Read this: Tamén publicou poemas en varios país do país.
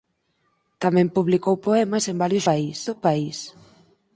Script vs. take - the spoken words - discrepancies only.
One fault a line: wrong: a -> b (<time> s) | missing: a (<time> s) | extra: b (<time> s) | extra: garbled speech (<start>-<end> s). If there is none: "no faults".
no faults